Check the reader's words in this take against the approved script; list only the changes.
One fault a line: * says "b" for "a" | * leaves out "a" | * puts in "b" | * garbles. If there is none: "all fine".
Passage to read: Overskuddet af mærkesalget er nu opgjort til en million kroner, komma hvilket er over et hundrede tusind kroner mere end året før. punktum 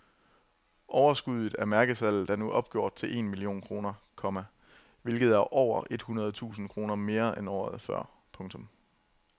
all fine